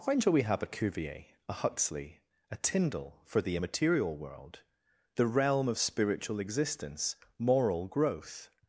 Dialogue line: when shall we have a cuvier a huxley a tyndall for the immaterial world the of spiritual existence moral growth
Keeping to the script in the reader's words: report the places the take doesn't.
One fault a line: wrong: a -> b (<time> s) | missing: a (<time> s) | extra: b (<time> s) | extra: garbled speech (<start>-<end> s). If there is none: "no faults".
extra: realm (5.3 s)